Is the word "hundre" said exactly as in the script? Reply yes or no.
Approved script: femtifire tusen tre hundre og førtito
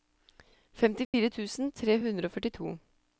yes